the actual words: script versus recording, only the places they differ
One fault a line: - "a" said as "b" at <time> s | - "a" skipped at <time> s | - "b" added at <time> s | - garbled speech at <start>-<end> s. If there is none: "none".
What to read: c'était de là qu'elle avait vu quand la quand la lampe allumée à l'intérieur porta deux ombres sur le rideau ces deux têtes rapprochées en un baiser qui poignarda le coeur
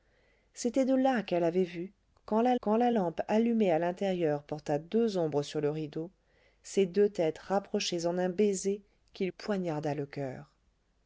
none